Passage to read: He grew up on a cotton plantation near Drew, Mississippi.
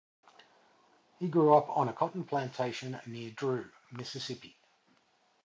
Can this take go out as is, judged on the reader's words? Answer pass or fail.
pass